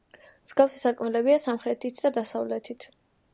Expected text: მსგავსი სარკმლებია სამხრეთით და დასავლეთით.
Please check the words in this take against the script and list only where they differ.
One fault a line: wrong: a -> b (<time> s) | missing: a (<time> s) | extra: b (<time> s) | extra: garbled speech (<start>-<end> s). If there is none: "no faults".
no faults